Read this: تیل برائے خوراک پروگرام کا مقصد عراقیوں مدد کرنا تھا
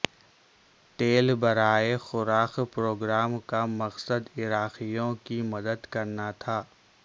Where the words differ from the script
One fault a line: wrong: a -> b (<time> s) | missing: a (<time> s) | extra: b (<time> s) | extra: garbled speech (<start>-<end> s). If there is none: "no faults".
extra: کی (5.2 s)